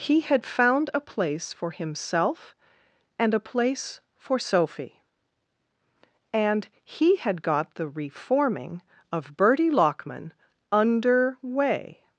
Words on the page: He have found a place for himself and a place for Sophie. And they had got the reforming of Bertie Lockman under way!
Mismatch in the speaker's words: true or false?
true